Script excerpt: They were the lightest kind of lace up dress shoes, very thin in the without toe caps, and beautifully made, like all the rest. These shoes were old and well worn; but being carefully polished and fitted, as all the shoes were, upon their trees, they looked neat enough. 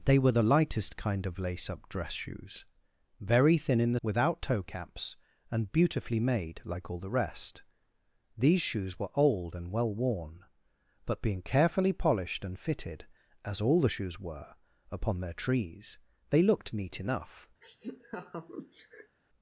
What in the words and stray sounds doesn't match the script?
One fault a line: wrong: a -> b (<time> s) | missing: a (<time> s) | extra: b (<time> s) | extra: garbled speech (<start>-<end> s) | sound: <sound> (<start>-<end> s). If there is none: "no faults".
sound: laugh (17.6-19.2 s)